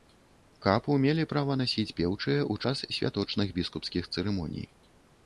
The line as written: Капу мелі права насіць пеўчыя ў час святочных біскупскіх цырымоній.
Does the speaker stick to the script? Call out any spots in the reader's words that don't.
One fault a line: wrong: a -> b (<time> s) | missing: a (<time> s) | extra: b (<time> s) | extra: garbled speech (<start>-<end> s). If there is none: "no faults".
no faults